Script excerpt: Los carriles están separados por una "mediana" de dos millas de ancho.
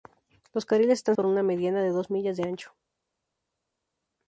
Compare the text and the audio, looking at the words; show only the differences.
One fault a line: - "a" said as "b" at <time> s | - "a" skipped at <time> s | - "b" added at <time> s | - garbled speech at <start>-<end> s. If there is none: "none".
- "separados" skipped at 1.1 s